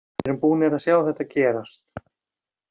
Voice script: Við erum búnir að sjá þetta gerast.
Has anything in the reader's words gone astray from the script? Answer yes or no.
no